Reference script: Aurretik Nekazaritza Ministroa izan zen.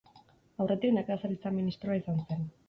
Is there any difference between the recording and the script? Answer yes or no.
no